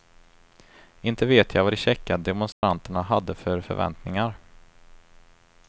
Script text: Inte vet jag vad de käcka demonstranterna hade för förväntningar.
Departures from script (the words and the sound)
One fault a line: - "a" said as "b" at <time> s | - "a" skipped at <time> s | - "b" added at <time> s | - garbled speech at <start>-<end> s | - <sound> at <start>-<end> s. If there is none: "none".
- dropout at 2.5-2.6 s